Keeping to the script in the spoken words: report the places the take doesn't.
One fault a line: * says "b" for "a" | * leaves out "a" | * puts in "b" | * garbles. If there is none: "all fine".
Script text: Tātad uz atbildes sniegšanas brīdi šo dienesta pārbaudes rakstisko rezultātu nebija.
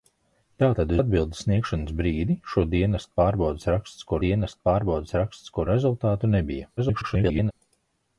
* leaves out "uz"
* puts in "dienesta pārbaudes rakstisko"
* garbles